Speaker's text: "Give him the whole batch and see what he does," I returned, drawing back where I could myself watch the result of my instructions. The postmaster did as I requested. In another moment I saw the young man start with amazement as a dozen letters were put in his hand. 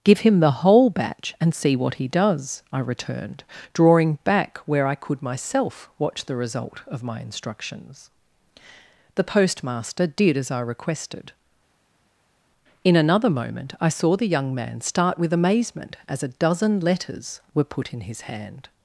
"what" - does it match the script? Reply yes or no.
yes